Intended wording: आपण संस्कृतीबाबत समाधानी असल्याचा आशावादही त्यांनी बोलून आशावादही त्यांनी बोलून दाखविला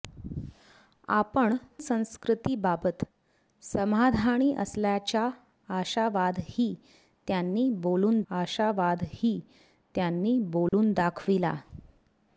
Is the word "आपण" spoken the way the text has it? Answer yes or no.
yes